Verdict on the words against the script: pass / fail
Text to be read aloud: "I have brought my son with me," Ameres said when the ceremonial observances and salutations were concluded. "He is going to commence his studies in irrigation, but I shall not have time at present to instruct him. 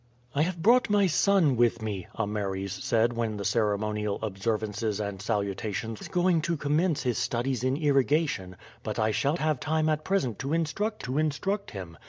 fail